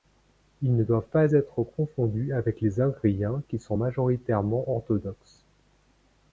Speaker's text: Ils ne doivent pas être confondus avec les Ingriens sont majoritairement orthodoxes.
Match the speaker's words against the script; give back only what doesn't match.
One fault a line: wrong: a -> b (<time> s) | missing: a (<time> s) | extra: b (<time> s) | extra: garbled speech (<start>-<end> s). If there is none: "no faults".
extra: qui (3.5 s)